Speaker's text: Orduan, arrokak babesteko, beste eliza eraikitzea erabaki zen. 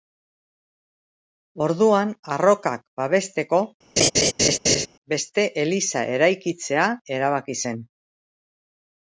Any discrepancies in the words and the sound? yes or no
yes